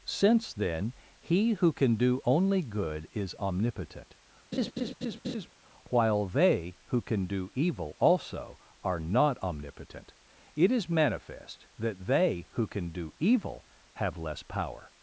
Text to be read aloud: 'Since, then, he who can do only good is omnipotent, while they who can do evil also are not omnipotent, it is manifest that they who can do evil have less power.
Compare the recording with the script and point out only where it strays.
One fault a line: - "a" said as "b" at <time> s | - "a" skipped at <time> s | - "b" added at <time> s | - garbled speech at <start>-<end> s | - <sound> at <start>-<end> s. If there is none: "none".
- laugh at 4.5-5.5 s